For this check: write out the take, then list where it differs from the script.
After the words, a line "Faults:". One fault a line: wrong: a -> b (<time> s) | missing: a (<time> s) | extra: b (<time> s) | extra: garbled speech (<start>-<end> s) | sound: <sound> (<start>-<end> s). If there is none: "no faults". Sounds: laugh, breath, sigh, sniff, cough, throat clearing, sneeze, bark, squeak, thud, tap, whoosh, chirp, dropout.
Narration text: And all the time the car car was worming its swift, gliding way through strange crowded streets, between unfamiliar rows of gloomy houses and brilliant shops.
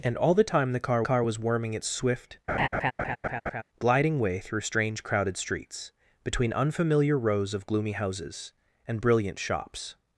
And all the time the car car was worming its swift, gliding way through strange crowded streets, between unfamiliar rows of gloomy houses and brilliant shops.
Faults:
sound: laugh (2.5-3.6 s)